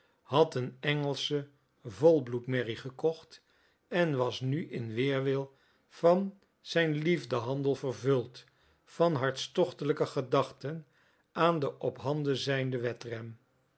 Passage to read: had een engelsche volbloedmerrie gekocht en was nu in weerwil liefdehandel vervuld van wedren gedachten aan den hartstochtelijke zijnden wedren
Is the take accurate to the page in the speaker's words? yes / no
no